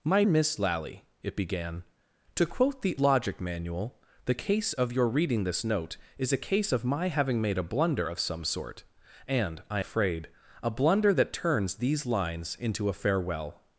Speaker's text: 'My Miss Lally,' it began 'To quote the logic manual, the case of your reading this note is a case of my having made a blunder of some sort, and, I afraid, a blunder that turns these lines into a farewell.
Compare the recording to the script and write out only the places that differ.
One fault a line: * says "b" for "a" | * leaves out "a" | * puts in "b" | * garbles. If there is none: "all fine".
all fine